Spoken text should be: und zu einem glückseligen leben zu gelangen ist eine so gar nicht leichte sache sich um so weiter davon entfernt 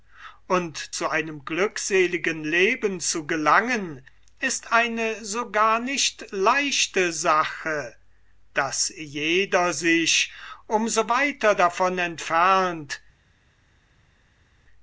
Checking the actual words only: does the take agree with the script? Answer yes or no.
no